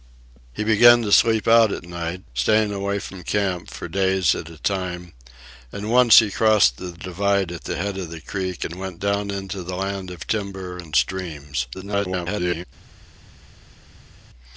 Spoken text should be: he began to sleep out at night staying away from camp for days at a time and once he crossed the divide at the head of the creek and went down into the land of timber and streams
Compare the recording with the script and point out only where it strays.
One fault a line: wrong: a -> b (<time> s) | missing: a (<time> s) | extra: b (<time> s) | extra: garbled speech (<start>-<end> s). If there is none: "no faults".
extra: garbled speech (11.7-12.6 s)